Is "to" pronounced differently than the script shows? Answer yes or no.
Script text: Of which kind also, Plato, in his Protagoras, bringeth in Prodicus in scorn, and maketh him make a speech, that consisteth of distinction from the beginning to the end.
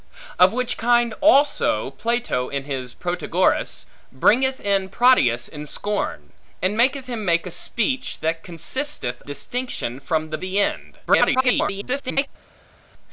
yes